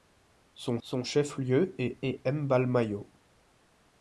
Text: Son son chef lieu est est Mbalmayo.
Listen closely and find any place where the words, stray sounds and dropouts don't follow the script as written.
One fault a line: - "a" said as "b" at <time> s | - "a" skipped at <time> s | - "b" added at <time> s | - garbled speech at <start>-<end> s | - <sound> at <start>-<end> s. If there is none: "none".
none